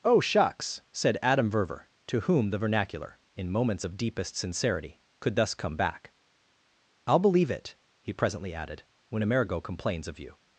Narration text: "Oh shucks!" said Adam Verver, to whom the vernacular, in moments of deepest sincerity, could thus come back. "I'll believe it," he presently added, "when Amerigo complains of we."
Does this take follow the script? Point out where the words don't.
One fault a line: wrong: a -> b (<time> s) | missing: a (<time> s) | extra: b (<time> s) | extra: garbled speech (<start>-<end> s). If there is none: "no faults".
wrong: we -> you (10.2 s)